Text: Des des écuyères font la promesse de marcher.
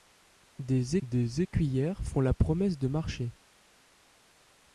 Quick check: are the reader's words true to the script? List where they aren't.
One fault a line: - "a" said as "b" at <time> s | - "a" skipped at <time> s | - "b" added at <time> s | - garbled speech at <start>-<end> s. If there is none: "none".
none